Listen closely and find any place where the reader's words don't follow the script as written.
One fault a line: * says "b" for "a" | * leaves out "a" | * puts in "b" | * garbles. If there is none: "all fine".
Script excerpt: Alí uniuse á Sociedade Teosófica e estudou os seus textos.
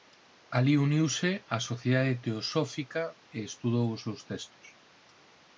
all fine